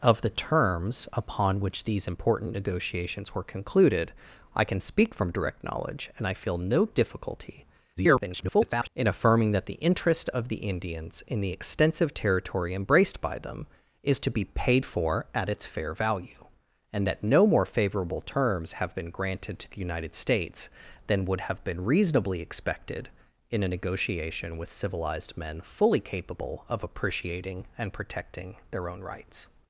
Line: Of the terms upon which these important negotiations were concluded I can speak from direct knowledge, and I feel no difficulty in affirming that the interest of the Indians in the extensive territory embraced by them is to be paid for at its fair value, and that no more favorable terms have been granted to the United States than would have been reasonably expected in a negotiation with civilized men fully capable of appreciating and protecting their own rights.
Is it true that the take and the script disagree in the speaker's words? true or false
true